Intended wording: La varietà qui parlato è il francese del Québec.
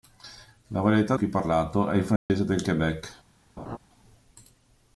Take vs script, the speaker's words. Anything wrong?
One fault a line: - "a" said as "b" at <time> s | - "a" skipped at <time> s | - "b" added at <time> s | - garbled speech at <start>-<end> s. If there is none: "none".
none